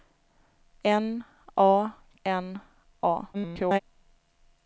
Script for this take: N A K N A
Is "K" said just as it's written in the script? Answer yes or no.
no